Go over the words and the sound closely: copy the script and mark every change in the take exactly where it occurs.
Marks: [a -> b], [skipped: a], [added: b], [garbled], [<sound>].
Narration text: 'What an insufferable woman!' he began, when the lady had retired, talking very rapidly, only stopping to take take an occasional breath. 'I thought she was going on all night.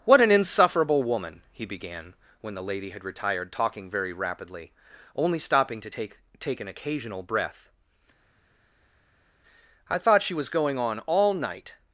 'What an insufferable woman!' he began, when the lady had retired, talking very rapidly, only stopping to take take an occasional breath. 'I thought she was going on all night.